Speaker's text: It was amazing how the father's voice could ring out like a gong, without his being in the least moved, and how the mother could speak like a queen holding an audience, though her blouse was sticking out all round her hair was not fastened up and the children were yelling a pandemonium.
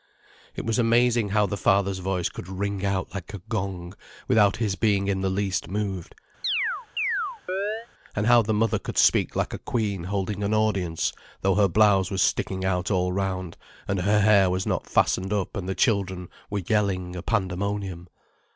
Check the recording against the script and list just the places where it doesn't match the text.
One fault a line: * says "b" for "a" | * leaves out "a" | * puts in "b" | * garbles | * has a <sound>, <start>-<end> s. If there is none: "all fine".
* has a chirp, 6.4-7.9 s
* puts in "and"